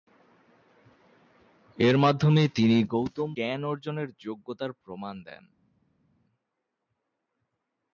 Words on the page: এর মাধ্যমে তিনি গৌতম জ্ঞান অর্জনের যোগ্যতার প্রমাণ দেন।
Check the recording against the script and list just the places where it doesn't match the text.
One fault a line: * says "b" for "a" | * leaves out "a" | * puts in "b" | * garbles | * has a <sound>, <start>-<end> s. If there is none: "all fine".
all fine